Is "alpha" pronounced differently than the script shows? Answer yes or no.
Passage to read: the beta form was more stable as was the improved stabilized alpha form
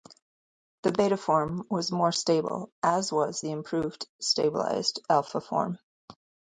no